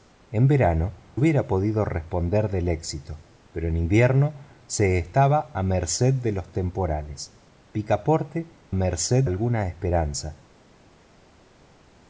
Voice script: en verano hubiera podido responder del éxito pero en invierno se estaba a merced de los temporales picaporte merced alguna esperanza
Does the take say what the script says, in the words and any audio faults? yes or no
yes